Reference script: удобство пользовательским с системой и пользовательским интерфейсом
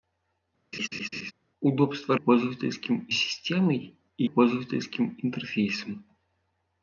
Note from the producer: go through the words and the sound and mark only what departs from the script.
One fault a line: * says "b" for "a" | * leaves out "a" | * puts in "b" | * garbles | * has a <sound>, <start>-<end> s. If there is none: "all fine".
* has a laugh, 0.7-1.3 s